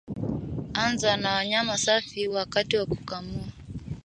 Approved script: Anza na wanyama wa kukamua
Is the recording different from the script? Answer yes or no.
yes